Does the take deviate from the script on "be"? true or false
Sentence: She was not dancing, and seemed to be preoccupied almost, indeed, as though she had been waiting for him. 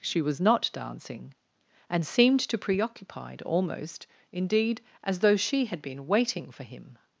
true